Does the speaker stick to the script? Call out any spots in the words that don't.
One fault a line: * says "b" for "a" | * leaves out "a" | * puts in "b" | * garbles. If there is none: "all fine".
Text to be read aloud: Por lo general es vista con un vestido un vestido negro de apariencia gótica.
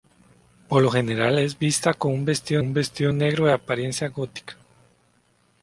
all fine